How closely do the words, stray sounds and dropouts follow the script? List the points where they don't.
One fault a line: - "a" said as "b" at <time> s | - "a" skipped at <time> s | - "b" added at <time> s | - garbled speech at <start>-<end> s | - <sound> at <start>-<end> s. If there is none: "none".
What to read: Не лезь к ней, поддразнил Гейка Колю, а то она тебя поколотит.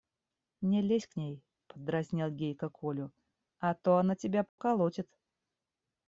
- dropout at 4.5-4.6 s